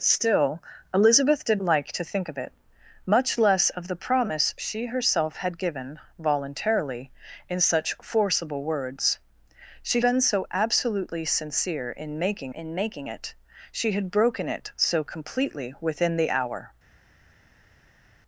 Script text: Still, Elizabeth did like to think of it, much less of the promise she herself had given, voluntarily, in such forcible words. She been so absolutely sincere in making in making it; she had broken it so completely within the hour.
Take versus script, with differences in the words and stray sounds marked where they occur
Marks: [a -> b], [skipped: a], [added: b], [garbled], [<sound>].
Still, Elizabeth did like to think of it, much less of the promise she herself had given, voluntarily, in such forcible words. She been so absolutely sincere in making in making it; she had broken it so completely within the hour.